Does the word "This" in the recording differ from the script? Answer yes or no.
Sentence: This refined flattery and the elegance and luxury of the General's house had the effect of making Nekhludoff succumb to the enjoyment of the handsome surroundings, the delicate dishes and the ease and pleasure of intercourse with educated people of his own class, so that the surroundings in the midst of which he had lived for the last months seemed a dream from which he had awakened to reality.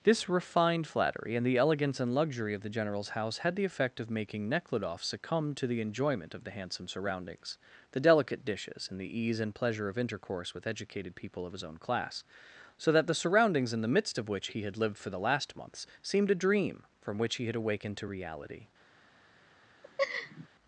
no